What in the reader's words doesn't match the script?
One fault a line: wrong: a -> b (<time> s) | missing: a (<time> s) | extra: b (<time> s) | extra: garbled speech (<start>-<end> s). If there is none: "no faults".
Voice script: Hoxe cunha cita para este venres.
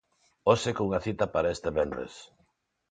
no faults